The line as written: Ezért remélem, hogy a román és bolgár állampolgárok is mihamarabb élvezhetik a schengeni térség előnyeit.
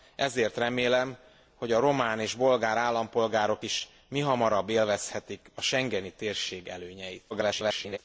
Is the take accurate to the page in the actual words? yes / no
no